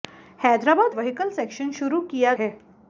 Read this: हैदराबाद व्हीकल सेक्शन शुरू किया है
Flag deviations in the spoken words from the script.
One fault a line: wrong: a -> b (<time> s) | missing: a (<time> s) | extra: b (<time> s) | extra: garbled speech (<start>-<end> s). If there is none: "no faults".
no faults